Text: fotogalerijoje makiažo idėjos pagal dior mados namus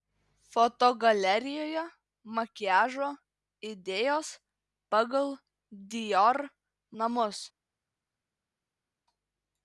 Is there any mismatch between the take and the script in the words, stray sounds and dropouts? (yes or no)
yes